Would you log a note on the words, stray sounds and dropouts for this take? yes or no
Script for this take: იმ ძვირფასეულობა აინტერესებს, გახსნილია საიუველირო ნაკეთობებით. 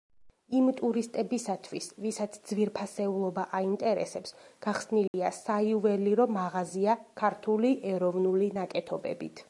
yes